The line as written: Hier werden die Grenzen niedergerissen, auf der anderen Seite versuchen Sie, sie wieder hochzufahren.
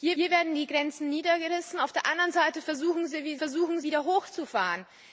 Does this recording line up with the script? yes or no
no